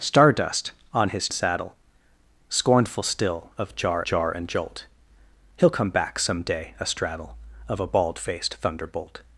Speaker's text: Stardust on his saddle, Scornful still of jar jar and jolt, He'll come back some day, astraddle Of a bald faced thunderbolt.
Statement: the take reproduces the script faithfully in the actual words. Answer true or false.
true